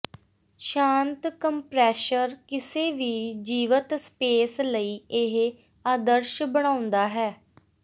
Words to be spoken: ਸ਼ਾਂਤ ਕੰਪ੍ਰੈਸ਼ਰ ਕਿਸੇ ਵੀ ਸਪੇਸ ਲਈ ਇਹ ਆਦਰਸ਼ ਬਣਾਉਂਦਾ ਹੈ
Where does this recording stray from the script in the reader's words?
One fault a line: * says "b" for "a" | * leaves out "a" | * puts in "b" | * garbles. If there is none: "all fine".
* puts in "ਜੀਵਤ"